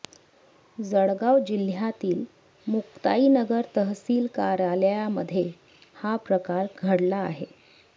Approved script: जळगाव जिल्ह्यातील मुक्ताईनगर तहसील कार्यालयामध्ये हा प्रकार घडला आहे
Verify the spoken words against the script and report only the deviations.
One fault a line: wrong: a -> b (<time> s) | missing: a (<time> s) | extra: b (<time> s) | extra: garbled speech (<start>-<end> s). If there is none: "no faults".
no faults